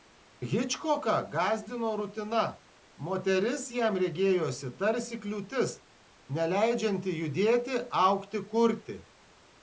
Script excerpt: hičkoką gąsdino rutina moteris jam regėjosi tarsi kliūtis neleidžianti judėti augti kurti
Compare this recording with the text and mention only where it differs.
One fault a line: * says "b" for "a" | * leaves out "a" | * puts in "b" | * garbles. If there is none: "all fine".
all fine